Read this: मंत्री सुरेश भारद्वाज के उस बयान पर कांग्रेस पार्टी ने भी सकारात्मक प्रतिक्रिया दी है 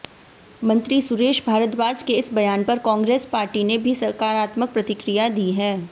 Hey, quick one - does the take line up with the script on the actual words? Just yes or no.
no